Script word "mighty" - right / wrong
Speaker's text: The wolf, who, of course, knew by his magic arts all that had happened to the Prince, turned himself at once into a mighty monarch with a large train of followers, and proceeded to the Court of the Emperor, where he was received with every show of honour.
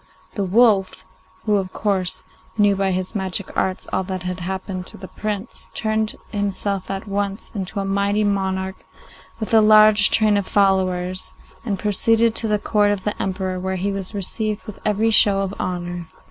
right